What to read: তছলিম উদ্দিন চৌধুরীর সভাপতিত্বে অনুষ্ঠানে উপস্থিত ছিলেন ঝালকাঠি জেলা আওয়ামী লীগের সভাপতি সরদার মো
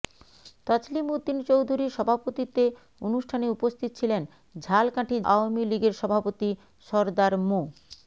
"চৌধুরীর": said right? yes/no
yes